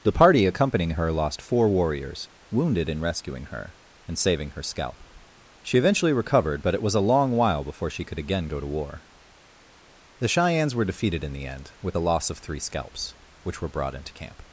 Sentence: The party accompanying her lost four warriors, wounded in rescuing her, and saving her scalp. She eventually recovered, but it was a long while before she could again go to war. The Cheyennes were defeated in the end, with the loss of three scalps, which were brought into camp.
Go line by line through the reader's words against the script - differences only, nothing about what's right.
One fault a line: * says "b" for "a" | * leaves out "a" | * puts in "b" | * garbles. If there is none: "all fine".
all fine